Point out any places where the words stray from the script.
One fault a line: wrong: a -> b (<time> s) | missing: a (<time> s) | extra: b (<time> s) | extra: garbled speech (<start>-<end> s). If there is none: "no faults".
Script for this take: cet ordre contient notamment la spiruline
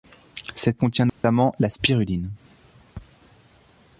missing: ordre (0.8 s)